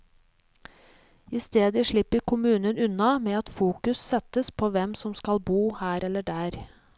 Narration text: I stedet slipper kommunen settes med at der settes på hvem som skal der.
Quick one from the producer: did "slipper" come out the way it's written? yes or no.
yes